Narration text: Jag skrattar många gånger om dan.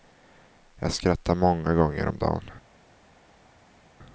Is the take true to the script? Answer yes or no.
yes